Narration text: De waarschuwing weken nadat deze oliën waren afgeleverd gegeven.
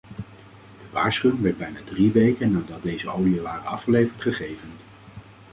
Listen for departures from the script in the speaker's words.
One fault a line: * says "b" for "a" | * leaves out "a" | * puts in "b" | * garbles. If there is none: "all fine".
* puts in "werd bijna drie"